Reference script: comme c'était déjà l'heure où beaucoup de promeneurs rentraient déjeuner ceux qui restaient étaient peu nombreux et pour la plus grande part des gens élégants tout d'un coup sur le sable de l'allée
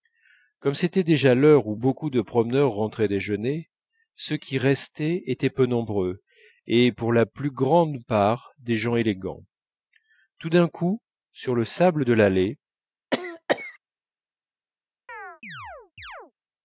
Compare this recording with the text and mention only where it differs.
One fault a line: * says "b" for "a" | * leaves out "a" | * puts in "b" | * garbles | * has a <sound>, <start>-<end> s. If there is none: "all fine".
* has a cough, 13.1-13.8 s
* has a chirp, 15.1-16.3 s